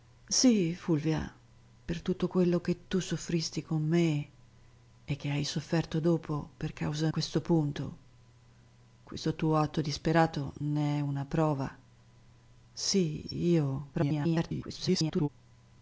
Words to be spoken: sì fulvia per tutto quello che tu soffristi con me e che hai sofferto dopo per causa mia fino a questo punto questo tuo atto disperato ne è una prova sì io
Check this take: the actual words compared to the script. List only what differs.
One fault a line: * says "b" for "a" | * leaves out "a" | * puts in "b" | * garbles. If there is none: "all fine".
* leaves out "mia fino"
* garbles